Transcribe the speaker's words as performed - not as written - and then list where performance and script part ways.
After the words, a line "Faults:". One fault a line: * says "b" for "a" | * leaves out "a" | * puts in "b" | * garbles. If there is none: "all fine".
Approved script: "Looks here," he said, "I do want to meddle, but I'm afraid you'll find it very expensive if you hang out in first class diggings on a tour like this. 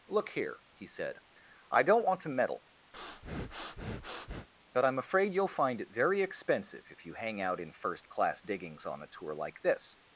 "Look here," he said, "I don't want to meddle, but I'm afraid you'll find it very expensive if you hang out in first class diggings on a tour like this.
Faults:
* says "Look" for "Looks"
* says "don't" for "do"